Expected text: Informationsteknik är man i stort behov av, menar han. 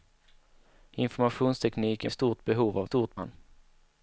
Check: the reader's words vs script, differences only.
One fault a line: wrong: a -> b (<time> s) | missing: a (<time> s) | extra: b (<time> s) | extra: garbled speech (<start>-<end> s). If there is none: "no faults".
missing: man (2.1 s)
wrong: menar -> stort (2.8 s)